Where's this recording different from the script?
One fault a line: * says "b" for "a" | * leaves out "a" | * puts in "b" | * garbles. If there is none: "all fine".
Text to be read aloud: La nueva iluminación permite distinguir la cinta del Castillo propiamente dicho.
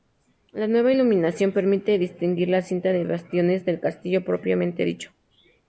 * puts in "de bastiones"